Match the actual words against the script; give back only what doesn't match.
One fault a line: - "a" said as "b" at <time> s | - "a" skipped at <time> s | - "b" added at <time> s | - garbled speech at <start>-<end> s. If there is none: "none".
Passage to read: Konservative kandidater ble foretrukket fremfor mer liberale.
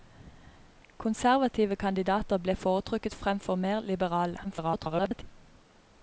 - garbled speech at 4.4-5.2 s